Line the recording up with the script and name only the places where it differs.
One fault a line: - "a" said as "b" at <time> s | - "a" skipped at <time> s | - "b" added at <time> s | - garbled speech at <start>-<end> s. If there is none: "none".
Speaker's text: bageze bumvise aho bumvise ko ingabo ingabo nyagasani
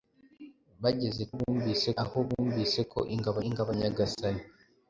none